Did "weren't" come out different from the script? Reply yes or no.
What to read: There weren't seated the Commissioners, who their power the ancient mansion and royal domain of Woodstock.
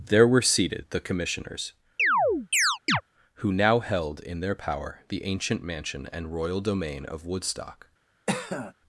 yes